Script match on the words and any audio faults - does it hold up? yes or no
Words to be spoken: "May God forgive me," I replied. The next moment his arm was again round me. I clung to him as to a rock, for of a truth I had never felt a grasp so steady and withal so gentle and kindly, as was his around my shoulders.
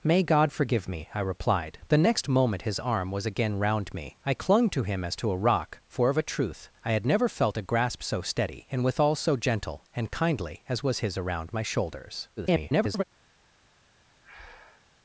no